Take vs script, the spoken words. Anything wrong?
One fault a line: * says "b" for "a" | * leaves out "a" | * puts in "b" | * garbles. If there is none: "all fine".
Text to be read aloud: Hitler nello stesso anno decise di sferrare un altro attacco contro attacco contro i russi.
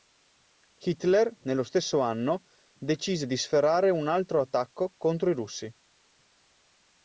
* leaves out "attacco contro"